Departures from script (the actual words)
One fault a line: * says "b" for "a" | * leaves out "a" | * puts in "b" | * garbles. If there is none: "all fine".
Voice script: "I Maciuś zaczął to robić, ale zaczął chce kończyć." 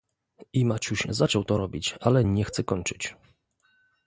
* says "nie" for "zaczął"